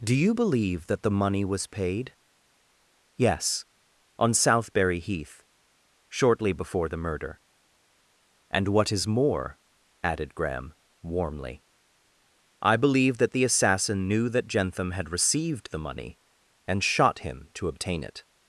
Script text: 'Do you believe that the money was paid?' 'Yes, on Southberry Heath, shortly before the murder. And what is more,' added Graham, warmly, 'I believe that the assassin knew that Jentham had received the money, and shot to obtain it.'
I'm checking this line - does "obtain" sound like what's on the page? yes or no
yes